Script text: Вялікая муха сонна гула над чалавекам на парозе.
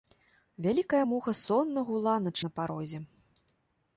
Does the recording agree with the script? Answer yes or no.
no